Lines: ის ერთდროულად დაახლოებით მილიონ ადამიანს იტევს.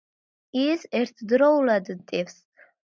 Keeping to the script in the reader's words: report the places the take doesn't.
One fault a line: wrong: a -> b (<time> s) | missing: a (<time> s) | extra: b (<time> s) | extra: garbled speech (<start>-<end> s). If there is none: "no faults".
missing: დაახლოებით მილიონ ადამიანს (1.9 s)